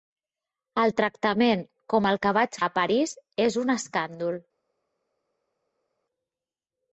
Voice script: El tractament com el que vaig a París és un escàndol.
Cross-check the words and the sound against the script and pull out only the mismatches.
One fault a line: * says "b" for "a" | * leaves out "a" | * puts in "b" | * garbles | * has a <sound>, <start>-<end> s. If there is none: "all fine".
all fine